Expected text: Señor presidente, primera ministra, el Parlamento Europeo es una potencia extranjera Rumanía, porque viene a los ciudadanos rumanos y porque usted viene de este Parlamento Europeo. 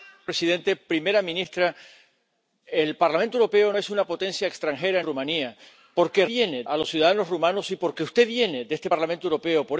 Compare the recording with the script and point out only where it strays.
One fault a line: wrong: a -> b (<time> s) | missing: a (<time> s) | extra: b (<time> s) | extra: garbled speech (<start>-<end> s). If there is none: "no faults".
no faults